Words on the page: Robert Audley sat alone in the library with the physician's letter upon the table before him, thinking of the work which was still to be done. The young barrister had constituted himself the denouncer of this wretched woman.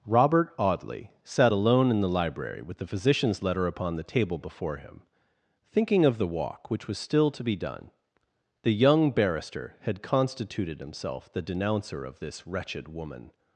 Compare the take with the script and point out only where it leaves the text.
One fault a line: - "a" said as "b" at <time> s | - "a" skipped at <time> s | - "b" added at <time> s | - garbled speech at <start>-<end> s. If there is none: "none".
- "work" said as "walk" at 6.3 s